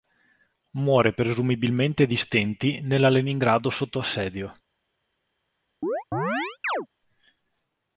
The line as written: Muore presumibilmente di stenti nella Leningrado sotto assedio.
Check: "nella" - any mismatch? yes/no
no